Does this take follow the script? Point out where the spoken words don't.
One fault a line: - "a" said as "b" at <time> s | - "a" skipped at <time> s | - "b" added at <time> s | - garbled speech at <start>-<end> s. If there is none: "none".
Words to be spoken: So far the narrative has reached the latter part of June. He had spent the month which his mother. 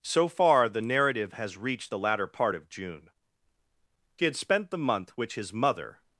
none